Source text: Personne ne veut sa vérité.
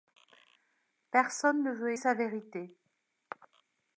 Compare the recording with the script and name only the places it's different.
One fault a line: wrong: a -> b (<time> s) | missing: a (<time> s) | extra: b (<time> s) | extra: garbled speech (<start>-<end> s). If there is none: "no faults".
no faults